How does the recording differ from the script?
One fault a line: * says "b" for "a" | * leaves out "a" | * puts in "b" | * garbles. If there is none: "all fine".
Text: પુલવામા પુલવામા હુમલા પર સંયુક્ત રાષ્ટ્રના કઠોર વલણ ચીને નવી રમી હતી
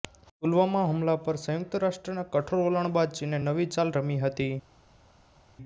* leaves out "પુલવામા"
* puts in "બાદ"
* puts in "ચાલ"